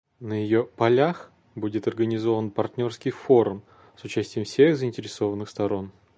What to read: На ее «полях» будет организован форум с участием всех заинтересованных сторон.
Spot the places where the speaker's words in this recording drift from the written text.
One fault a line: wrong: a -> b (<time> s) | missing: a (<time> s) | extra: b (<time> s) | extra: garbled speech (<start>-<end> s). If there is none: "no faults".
extra: партнерский (2.5 s)